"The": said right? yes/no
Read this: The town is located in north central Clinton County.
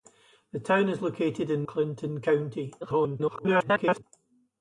yes